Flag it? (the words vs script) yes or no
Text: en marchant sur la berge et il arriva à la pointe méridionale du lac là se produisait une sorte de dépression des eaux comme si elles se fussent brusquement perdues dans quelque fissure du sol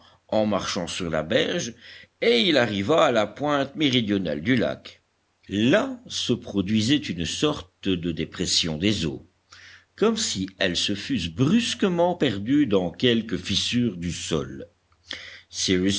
no